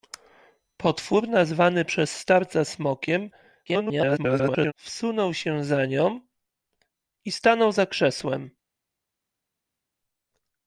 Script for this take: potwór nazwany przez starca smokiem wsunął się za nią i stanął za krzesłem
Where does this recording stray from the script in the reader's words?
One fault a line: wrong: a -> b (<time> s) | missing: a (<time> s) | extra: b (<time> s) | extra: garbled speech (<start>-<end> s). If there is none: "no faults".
extra: garbled speech (3.7-4.7 s)